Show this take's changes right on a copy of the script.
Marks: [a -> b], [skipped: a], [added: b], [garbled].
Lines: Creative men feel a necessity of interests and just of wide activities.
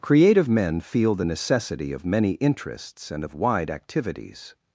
Creative men feel [a -> the] necessity of [added: many] interests and [skipped: just] of wide activities.